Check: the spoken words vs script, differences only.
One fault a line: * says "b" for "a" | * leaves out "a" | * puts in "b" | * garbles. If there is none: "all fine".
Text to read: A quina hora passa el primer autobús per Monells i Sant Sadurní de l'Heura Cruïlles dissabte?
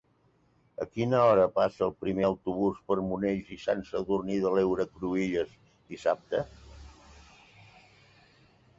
all fine